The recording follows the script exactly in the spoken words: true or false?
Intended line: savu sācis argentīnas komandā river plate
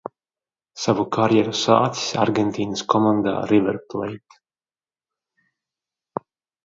false